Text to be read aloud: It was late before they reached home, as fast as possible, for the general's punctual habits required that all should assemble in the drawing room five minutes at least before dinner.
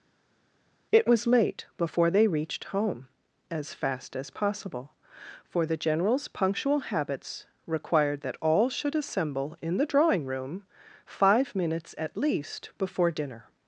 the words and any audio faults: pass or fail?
pass